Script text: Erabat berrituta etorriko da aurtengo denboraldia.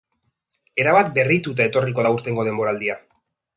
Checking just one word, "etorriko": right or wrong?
right